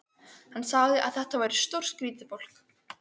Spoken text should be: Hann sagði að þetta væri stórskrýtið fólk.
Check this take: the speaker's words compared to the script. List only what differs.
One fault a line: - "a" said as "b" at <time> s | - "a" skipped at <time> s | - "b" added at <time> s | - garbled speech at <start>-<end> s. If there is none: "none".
none